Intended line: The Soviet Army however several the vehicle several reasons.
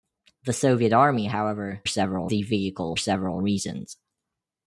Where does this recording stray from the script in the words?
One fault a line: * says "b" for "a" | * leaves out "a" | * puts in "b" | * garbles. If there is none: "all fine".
all fine